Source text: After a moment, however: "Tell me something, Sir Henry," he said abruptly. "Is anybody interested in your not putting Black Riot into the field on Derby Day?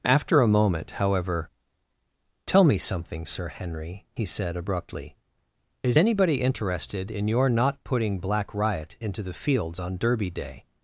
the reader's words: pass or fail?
fail